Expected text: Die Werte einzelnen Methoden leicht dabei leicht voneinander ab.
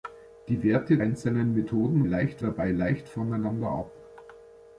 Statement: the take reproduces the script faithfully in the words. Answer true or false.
true